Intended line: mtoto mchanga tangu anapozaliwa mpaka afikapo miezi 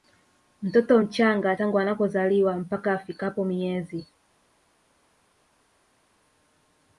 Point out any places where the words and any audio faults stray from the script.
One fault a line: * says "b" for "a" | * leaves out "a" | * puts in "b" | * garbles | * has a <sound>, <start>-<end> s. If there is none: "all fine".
all fine